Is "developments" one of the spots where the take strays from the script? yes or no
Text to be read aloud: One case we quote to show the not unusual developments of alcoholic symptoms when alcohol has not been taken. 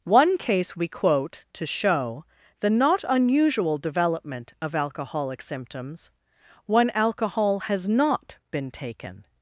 yes